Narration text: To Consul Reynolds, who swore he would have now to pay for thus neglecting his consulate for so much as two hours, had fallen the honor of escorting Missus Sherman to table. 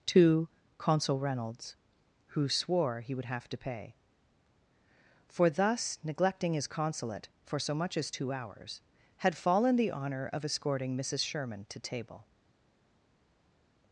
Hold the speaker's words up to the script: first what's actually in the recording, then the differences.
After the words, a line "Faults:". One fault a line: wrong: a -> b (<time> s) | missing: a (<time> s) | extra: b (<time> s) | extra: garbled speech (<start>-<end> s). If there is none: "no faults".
To Consul Reynolds, who swore he would have to pay for thus neglecting his consulate for so much as two hours, had fallen the honor of escorting Missus Sherman to table.
Faults:
missing: now (3.5 s)